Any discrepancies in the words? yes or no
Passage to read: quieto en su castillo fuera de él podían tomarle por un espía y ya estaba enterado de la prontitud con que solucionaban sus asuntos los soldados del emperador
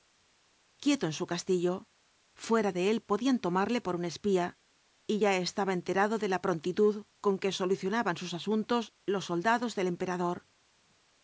no